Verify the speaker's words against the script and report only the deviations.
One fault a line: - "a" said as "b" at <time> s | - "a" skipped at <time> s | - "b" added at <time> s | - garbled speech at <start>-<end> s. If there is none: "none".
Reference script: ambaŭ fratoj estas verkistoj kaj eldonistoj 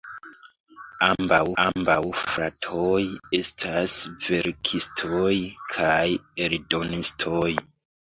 - "ambaŭ" added at 1.6 s